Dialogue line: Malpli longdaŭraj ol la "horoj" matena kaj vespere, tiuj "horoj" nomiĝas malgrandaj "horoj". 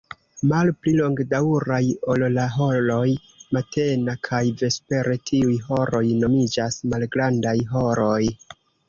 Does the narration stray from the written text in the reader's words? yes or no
no